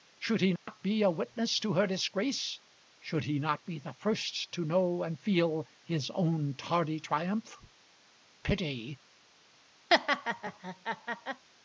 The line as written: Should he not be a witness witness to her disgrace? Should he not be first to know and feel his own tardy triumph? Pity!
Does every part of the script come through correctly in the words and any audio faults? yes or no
no